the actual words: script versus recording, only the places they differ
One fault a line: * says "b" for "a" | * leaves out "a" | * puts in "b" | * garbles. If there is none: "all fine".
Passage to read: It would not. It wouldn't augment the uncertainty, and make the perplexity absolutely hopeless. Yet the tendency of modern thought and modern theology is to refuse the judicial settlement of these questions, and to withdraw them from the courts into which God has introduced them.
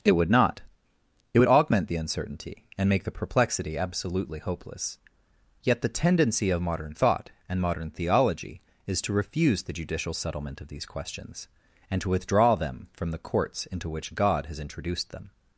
* says "would" for "wouldn't"